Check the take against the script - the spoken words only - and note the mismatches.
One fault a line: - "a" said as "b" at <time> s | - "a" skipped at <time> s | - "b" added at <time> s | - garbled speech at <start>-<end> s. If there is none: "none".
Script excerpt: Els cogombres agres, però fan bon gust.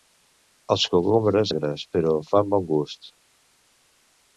none